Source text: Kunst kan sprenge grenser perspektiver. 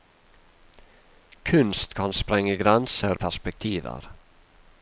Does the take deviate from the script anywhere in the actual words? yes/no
no